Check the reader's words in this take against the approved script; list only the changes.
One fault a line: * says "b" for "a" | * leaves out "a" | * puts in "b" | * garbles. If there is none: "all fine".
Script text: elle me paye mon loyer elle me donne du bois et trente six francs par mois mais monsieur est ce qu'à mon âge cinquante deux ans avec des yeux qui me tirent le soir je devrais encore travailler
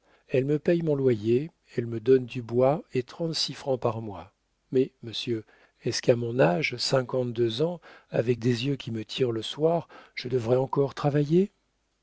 all fine